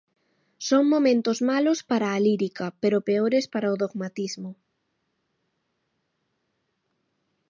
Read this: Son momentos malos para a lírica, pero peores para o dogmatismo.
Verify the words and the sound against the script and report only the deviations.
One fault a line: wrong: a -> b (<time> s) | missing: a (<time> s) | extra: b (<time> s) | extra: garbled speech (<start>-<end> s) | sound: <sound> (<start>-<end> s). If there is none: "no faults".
no faults